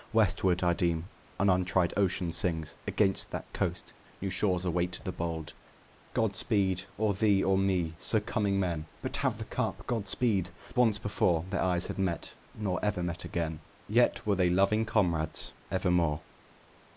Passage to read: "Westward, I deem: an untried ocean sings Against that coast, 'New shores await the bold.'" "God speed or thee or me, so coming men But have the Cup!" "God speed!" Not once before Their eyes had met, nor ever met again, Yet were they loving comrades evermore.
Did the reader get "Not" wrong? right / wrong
wrong